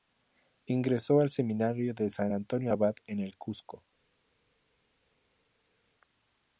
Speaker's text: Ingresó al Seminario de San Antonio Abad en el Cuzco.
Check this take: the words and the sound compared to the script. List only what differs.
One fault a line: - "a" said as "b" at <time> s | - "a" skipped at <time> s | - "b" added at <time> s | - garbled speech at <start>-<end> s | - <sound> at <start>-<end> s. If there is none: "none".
none